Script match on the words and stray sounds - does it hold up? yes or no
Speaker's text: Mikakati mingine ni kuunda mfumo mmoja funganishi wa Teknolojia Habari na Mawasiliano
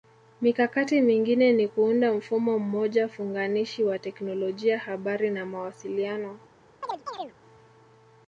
no